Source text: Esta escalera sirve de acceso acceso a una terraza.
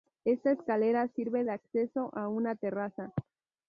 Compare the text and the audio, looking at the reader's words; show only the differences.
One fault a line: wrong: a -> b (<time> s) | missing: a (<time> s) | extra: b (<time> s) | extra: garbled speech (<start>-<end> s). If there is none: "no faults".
missing: acceso (2.1 s)